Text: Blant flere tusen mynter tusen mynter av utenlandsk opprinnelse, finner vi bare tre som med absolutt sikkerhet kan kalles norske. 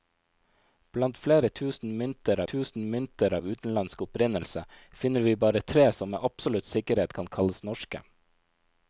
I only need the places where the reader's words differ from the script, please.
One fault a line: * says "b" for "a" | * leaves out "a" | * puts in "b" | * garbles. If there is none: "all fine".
all fine